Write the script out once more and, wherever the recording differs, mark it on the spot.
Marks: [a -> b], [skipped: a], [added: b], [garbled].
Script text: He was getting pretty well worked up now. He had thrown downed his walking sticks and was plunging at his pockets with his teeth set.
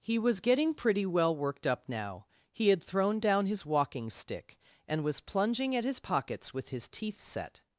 He was getting pretty well worked up now. He had thrown [downed -> down] his walking [sticks -> stick] and was plunging at his pockets with his teeth set.